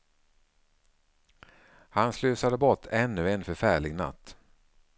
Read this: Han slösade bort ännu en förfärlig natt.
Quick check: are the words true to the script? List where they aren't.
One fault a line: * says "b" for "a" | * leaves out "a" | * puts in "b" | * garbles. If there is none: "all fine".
all fine